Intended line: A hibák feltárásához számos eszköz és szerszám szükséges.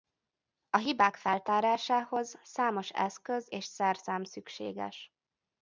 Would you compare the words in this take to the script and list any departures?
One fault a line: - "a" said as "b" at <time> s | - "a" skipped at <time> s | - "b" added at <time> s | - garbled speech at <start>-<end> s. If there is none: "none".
none